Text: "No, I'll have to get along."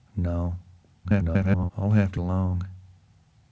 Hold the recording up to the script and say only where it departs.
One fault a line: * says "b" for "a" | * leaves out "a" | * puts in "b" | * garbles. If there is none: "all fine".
* garbles
* leaves out "get"